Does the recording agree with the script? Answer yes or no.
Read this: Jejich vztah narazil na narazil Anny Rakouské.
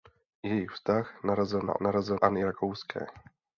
yes